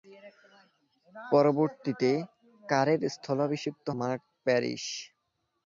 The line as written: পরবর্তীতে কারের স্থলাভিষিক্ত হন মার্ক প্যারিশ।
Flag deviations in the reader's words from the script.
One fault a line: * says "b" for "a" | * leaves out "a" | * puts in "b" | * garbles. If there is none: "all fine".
* leaves out "হন"